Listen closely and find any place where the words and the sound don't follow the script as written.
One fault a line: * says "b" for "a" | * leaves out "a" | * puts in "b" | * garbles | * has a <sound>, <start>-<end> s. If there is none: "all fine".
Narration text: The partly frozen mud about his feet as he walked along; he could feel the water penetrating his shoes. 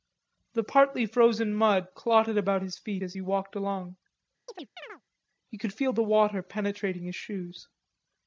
* puts in "clotted"
* has a chirp, 4.5-5.0 s